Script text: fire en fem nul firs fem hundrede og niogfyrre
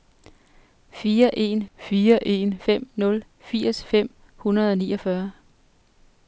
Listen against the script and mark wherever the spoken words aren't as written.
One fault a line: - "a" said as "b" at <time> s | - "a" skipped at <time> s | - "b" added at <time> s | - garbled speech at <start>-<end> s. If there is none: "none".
- "fire en" added at 1.8 s